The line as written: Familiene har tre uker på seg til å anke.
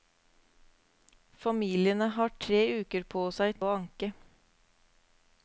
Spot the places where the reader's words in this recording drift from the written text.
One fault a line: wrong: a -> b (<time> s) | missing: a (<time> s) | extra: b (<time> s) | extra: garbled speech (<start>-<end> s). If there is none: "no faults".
missing: til (3.6 s)